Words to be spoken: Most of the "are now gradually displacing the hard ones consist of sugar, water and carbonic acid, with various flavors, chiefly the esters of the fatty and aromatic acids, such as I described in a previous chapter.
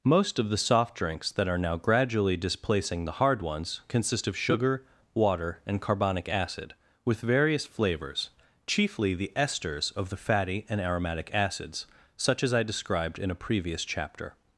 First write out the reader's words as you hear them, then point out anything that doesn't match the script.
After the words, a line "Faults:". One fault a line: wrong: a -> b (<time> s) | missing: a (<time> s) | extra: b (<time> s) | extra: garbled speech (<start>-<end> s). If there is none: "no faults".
Most of the "soft drinks" that are now gradually displacing the hard ones consist of sugar, water and carbonic acid, with various flavors, chiefly the esters of the fatty and aromatic acids, such as I described in a previous chapter.
Faults:
extra: soft drinks that (0.6 s)